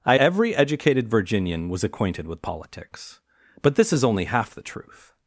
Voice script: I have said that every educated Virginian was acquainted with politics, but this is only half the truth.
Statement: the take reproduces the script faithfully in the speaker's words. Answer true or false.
false